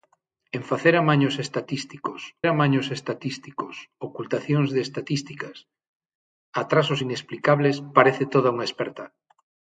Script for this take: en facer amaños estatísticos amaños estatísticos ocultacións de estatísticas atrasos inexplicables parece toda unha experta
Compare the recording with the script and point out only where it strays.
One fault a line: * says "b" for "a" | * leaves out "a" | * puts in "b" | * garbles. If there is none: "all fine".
all fine